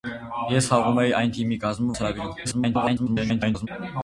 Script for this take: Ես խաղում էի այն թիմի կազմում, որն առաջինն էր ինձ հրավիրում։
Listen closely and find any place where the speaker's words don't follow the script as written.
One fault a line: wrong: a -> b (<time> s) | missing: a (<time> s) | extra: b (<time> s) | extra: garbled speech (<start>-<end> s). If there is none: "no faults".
missing: որն առաջինն էր (1.9 s)
extra: garbled speech (2.4-3.7 s)